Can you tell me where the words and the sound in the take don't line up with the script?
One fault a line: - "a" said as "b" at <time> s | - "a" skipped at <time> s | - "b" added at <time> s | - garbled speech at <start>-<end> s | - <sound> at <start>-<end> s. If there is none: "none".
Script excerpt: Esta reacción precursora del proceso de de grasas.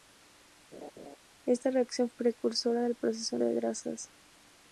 - laugh at 0.7-1.2 s